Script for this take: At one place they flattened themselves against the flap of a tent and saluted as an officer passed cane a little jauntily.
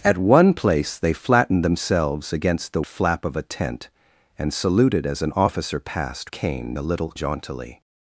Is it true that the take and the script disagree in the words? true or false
false